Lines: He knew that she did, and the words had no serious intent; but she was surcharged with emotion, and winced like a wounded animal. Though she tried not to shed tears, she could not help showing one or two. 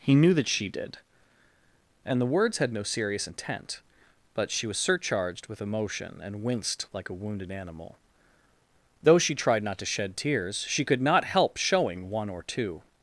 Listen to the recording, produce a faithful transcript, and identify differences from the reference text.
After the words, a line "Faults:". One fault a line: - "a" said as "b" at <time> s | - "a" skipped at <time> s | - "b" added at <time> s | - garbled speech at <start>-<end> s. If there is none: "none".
He knew that she did, and the words had no serious intent; but she was surcharged with emotion, and winced like a wounded animal. Though she tried not to shed tears, she could not help showing one or two.
Faults:
none